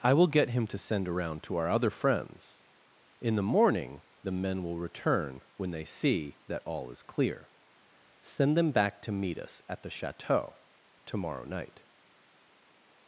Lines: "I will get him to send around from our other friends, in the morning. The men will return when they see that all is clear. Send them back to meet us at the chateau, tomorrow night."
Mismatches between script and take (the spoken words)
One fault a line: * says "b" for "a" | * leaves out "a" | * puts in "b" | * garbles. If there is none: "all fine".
* says "to" for "from"